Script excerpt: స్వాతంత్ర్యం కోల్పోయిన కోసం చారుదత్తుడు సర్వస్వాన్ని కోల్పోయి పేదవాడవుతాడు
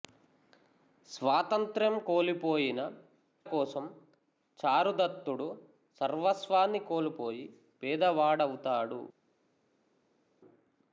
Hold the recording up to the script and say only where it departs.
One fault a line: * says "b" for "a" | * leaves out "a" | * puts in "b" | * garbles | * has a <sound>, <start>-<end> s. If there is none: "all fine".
all fine